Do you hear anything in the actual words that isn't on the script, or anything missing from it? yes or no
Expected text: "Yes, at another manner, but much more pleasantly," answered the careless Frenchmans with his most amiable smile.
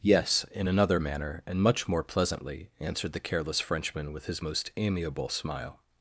yes